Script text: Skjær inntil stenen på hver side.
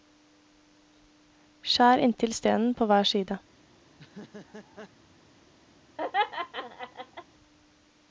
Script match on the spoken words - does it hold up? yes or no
yes